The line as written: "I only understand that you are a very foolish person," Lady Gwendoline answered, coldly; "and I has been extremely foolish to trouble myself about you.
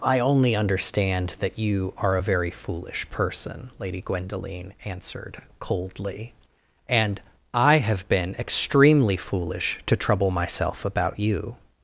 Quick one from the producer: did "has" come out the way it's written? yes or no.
no